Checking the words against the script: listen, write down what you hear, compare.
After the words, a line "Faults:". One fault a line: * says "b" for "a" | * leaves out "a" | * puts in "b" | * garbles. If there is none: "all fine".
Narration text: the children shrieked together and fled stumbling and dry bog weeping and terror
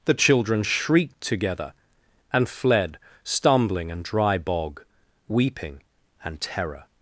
the children shrieked together and fled stumbling and dry bog weeping and terror
Faults:
all fine